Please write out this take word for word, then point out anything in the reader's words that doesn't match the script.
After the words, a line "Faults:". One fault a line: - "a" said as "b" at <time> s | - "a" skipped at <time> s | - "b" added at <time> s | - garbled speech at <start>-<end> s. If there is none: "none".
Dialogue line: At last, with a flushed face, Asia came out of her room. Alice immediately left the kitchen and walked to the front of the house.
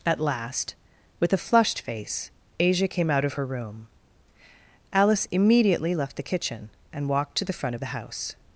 At last, with a flushed face, Asia came out of her room. Alice immediately left the kitchen and walked to the front of the house.
Faults:
none